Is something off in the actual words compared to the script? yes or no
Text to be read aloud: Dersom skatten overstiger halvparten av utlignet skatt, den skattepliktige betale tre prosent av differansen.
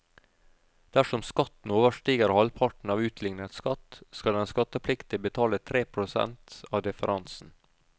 yes